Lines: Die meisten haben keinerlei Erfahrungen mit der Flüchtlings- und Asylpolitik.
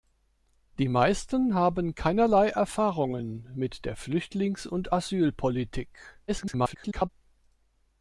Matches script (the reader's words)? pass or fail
fail